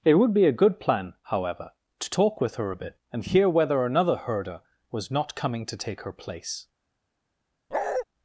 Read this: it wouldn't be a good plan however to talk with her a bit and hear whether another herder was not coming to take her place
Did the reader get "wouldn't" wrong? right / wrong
wrong